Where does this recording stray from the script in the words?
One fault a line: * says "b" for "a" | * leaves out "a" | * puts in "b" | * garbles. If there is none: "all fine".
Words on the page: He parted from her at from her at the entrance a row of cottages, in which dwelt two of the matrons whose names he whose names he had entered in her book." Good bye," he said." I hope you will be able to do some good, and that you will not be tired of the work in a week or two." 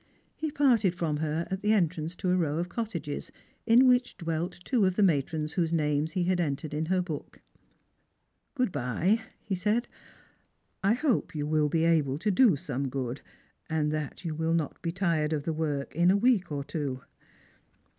* leaves out "from her at"
* puts in "to"
* leaves out "whose names he"